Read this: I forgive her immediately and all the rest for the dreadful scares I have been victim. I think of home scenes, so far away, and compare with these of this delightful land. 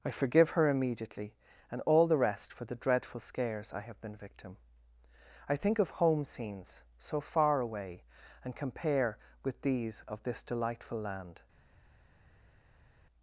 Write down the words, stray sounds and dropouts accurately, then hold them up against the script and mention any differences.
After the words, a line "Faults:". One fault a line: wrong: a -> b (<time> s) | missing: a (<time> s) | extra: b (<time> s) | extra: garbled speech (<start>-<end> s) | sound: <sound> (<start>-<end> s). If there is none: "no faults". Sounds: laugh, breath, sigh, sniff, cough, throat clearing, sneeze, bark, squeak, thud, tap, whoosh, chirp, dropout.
I forgive her immediately and all the rest for the dreadful scares I have been victim. I think of home scenes, so far away, and compare with these of this delightful land.
Faults:
no faults